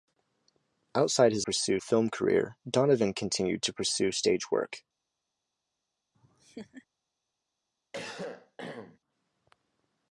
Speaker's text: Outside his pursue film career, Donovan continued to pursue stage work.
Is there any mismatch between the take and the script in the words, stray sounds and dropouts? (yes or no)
yes